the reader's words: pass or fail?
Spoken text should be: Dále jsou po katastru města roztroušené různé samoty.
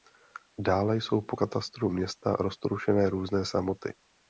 pass